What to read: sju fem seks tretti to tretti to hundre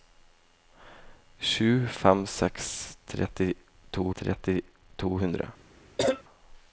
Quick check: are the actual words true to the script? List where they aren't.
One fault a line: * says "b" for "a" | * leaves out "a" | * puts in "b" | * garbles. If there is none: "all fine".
all fine